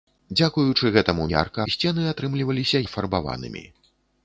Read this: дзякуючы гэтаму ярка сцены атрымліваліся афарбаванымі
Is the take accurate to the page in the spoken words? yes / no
yes